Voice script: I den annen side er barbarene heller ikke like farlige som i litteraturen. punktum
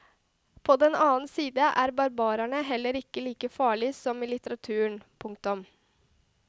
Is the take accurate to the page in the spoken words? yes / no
no